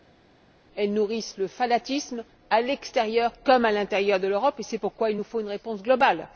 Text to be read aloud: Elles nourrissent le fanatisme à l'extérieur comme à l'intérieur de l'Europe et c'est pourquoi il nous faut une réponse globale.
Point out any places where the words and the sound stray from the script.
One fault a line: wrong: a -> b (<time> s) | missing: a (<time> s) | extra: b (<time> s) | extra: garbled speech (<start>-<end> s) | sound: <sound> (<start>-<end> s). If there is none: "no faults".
no faults